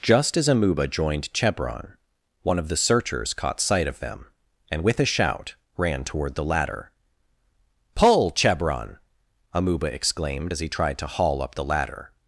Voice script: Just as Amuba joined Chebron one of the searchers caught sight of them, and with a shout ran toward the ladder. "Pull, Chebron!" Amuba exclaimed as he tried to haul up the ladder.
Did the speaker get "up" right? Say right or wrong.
right